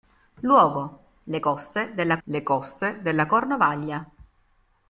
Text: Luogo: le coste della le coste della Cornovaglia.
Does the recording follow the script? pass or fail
pass